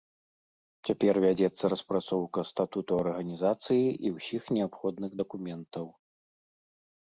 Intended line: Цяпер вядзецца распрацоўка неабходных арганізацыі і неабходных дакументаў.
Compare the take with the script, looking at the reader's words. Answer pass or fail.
fail